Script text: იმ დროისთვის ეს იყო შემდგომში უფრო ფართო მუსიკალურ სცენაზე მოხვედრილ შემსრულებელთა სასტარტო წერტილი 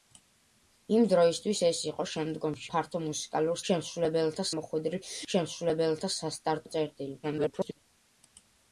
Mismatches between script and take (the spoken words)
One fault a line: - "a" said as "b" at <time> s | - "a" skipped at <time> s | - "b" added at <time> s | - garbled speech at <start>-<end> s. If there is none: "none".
- "უფრო" skipped at 2.7 s
- "სცენაზე" said as "შემსრულებელთა" at 3.7 s
- garbled speech at 7.2-7.8 s